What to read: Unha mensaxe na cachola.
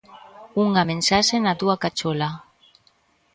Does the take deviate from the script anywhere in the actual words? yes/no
yes